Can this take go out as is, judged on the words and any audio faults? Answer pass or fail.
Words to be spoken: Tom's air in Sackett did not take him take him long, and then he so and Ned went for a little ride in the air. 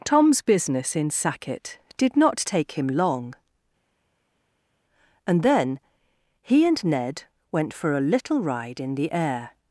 fail